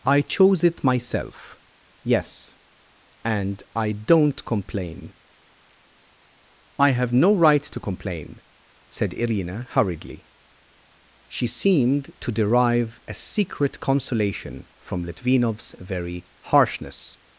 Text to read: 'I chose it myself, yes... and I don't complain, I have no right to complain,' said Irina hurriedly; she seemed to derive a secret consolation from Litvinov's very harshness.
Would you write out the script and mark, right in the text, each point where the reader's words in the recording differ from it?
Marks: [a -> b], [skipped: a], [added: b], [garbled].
'I chose it myself, yes... and I don't complain, I have no right to complain,' said Irina hurriedly; she seemed to derive a secret consolation from Litvinov's very harshness.